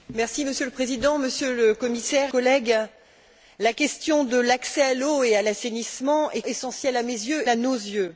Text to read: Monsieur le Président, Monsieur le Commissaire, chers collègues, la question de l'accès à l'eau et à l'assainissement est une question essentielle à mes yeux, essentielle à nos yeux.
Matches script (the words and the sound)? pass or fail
fail